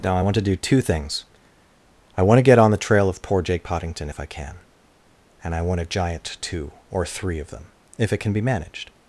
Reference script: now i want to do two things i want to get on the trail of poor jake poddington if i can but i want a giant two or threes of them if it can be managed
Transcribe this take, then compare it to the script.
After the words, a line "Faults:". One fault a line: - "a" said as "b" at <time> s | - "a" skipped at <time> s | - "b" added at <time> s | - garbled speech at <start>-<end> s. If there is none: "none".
now i want to do two things i want to get on the trail of poor jake poddington if i can and i want a giant two or three of them if it can be managed
Faults:
- "but" said as "and" at 5.4 s
- "threes" said as "three" at 7.0 s